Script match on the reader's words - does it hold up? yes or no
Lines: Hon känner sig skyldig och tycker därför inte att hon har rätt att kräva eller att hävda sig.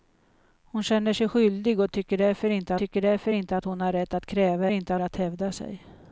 no